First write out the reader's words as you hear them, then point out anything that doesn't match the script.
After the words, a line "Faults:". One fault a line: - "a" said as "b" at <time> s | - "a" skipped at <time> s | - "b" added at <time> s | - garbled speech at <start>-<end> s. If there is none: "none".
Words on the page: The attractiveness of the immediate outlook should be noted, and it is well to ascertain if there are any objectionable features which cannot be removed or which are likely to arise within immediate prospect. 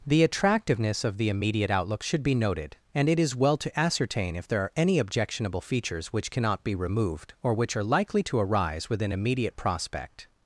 The attractiveness of the immediate outlook should be noted, and it is well to ascertain if there are any objectionable features which cannot be removed or which are likely to arise within immediate prospect.
Faults:
none